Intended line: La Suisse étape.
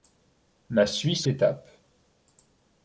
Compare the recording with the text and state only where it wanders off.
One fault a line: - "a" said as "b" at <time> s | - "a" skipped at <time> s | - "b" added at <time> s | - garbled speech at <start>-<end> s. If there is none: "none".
none